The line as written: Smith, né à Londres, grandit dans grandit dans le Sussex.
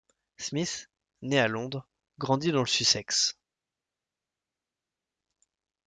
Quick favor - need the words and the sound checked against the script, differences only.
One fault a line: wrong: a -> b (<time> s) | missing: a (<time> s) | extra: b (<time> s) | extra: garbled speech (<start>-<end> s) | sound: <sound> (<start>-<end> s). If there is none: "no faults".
missing: grandit dans (2.6 s)